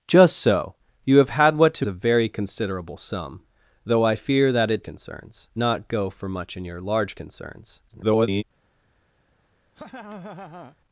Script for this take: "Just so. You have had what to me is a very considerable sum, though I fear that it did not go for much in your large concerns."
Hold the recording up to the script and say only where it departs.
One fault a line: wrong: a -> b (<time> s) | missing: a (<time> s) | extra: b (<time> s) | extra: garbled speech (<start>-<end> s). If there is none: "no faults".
missing: me is (1.9 s)
wrong: did -> concerns (4.8 s)
extra: garbled speech (7.9-8.4 s)